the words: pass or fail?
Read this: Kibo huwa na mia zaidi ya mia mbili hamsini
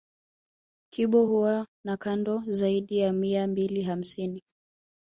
fail